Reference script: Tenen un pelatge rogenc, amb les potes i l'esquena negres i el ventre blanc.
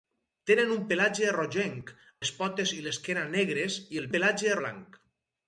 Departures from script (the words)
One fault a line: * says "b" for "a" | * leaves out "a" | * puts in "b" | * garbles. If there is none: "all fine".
* leaves out "amb"
* says "pelatge" for "ventre"